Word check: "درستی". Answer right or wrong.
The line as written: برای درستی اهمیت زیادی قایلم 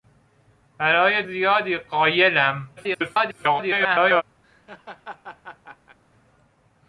wrong